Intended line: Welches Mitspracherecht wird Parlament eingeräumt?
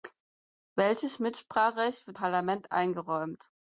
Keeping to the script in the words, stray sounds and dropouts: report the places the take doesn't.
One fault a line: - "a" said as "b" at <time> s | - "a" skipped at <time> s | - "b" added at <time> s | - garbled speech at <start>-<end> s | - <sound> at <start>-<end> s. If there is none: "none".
none